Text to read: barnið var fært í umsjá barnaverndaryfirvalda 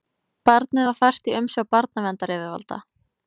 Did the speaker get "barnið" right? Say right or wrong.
right